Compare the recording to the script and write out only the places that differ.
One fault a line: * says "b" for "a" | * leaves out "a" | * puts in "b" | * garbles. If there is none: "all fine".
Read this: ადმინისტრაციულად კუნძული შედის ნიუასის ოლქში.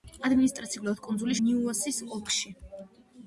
* leaves out "შედის"